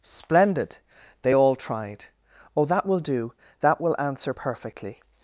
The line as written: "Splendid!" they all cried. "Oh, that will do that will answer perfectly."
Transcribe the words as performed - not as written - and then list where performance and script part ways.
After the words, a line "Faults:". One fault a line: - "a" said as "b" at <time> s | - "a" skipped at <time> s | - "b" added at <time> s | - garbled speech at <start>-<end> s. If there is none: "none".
"Splendid!" they all tried. "Oh, that will do that will answer perfectly."
Faults:
- "cried" said as "tried" at 1.6 s